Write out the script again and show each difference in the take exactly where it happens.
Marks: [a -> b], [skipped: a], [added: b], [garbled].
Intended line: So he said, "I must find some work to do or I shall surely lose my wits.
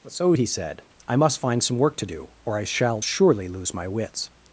So he said, "I must find some work to do or I shall surely lose my wits.